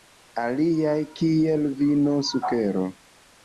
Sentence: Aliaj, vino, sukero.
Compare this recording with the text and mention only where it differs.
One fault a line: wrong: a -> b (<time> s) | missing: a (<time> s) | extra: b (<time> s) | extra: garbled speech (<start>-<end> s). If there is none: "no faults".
extra: kiel (1.2 s)